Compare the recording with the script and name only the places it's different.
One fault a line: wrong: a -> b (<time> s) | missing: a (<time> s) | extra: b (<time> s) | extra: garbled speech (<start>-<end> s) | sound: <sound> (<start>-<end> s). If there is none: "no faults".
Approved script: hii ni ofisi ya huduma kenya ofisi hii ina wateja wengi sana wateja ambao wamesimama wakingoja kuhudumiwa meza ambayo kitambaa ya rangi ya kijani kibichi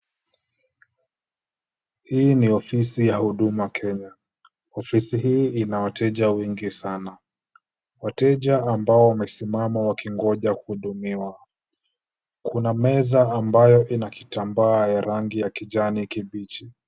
extra: kuna (12.4 s)
extra: ina (13.9 s)